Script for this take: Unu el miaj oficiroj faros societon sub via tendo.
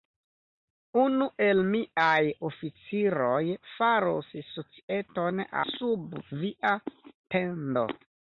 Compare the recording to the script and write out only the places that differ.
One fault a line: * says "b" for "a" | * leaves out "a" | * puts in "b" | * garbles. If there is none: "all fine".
all fine